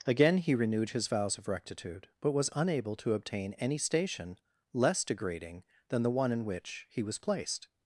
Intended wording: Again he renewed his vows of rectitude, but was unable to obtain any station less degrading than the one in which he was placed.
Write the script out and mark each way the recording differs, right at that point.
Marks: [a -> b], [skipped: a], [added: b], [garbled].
Again he renewed his vows of rectitude, but was unable to obtain any station less degrading than the one in which he was placed.